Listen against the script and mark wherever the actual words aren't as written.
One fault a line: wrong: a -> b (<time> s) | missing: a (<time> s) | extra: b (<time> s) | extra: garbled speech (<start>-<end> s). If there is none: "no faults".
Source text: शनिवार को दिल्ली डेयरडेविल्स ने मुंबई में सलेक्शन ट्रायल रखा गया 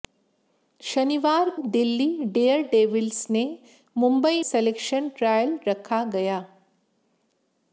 missing: को (1.5 s)
missing: में (4.4 s)